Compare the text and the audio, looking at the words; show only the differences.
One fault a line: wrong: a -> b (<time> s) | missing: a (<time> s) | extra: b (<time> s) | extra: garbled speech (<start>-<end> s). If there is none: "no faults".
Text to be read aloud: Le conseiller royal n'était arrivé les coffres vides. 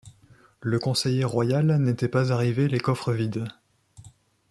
extra: pas (2.1 s)